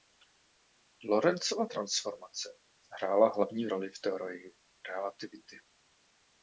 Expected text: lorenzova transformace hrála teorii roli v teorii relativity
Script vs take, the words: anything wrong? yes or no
yes